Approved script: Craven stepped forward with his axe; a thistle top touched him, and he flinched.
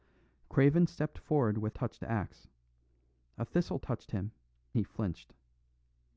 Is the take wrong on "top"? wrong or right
wrong